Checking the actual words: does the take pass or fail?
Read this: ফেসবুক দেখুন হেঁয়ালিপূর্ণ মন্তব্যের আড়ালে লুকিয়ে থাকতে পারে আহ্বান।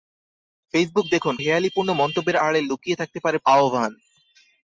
pass